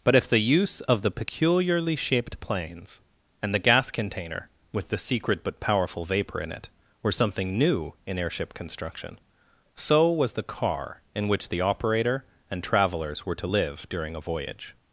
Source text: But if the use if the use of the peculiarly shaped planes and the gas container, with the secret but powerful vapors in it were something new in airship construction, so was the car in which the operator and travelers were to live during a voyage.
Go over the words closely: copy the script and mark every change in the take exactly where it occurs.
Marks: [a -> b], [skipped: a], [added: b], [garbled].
But if the use [skipped: if the use] of the peculiarly shaped planes and the gas container, with the secret but powerful [vapors -> vapor] in it were something new in airship construction, so was the car in which the operator and travelers were to live during a voyage.